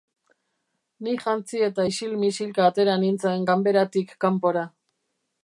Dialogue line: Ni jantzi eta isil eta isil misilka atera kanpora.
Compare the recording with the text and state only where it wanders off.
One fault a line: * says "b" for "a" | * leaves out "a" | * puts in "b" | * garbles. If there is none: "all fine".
* says "misilka atera nintzen ganberatik" for "eta isil misilka atera"